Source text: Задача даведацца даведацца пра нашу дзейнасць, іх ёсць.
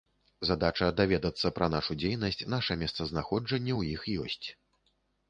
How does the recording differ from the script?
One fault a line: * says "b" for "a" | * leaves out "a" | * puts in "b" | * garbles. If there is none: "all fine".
* leaves out "даведацца"
* puts in "наша месцазнаходжанне ў"